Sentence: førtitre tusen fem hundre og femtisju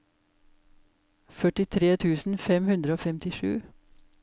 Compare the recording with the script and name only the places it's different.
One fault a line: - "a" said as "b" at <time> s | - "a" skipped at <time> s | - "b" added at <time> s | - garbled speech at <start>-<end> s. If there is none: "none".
none